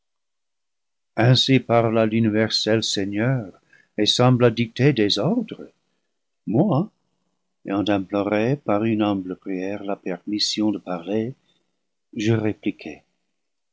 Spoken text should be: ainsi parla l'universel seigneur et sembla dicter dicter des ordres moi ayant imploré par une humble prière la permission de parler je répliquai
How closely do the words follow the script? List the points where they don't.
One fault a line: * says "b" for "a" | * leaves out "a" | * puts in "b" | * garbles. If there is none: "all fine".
* leaves out "dicter"